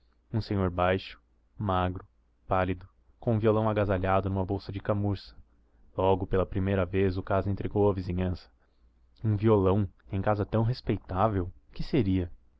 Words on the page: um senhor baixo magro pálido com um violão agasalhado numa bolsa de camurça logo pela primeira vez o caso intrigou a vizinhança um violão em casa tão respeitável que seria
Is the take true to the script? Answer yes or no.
yes